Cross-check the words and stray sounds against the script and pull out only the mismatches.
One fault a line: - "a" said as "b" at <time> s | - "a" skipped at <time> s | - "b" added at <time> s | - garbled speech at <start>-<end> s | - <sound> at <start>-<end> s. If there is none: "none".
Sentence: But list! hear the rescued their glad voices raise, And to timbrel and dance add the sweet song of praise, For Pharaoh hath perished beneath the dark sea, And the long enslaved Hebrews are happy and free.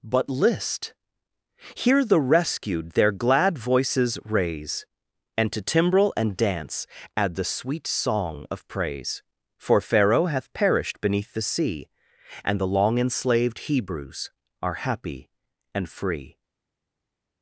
- "dark" skipped at 11.4 s